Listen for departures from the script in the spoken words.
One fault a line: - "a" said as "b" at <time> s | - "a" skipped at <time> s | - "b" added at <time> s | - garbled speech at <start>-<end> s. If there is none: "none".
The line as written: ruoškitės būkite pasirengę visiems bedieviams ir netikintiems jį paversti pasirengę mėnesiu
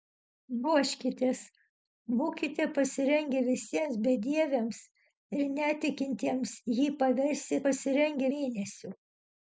none